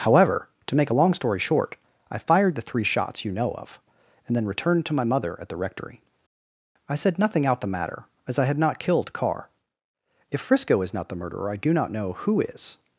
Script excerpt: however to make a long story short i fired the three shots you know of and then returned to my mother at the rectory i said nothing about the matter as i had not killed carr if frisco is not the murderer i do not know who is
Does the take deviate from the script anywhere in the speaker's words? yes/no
yes